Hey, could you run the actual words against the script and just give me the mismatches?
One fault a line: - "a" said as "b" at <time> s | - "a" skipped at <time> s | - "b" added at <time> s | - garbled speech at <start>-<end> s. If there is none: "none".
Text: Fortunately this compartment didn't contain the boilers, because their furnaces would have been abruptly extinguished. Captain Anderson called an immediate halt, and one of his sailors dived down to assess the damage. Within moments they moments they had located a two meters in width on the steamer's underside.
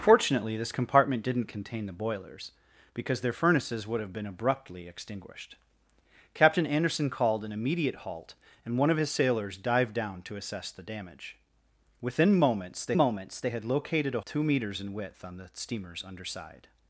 none